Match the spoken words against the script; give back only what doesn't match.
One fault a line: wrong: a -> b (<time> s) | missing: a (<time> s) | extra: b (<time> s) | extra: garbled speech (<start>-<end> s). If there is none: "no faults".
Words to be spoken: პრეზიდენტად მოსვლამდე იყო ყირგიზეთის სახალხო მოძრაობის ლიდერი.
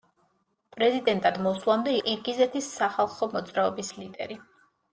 missing: იყო (1.9 s)